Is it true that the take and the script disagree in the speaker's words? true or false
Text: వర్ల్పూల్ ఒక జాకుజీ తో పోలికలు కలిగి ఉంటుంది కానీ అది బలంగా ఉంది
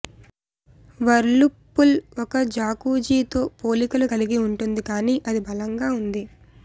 false